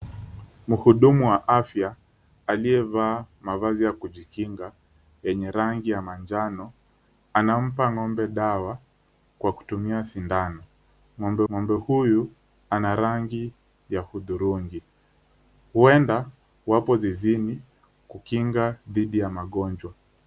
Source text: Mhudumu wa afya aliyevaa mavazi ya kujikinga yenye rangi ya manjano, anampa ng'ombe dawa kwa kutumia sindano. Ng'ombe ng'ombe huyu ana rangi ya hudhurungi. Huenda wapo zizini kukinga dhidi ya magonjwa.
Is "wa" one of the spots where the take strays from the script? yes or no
no